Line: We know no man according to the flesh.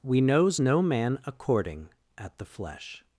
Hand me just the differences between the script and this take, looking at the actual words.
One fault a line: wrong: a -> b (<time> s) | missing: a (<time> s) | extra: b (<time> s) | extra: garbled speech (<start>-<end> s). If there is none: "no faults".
wrong: know -> knows (0.2 s)
wrong: to -> at (2.2 s)